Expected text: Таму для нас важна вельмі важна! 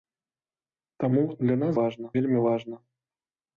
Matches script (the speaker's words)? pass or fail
pass